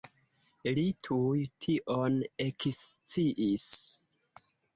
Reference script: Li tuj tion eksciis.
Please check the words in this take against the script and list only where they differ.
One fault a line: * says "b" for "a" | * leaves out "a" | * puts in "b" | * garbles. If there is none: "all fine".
all fine